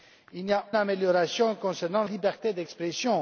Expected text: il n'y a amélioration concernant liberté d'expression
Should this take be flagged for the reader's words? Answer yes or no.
no